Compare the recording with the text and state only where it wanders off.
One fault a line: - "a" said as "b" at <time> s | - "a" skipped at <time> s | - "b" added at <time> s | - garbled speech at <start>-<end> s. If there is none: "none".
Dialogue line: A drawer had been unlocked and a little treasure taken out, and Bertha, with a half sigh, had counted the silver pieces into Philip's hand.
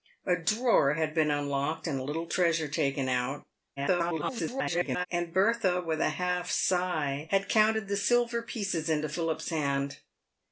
- garbled speech at 3.8-5.1 s